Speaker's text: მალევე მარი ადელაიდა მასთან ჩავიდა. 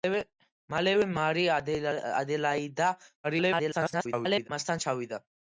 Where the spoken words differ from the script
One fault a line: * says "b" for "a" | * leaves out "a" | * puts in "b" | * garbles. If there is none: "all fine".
* garbles